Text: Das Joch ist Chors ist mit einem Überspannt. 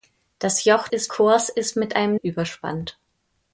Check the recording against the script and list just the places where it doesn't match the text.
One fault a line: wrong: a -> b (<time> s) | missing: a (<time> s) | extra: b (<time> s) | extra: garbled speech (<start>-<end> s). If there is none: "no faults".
no faults